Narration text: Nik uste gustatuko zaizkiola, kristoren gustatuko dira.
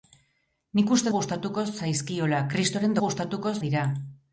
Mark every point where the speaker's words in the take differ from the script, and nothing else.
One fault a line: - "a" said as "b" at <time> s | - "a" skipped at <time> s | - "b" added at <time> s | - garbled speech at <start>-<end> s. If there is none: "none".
none